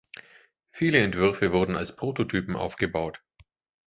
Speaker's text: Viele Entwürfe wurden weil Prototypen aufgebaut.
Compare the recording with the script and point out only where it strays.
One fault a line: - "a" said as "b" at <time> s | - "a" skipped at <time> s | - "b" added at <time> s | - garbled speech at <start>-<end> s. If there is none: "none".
- "weil" said as "als" at 1.7 s